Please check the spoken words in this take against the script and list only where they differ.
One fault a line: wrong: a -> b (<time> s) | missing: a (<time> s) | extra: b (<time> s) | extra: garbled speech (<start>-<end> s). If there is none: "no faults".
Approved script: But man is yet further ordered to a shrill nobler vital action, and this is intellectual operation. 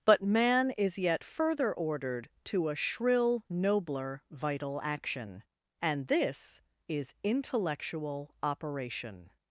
no faults